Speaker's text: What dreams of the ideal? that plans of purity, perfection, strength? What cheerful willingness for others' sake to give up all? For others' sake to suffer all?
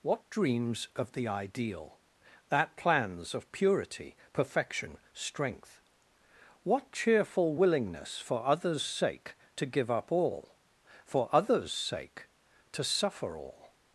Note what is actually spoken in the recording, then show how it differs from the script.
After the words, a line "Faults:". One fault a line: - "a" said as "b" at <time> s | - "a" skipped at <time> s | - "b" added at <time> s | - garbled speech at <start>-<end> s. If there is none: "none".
What dreams of the ideal? that plans of purity, perfection, strength? What cheerful willingness for others' sake to give up all? For others' sake to suffer all?
Faults:
none